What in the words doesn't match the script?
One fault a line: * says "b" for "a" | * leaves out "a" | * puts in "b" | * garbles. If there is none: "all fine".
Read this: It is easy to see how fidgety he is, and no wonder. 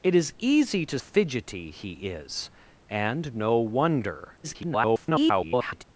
* leaves out "see how"
* garbles